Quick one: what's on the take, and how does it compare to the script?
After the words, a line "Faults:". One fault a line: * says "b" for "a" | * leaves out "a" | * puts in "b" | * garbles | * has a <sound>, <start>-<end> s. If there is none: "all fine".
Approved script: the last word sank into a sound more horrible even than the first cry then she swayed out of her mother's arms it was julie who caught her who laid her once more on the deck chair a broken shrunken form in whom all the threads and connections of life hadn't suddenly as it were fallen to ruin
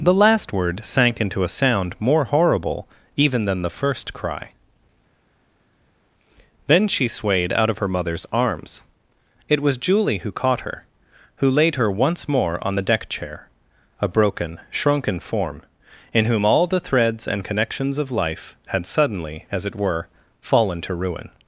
the last word sank into a sound more horrible even than the first cry then she swayed out of her mother's arms it was julie who caught her who laid her once more on the deck chair a broken shrunken form in whom all the threads and connections of life had suddenly as it were fallen to ruin
Faults:
* says "had" for "hadn't"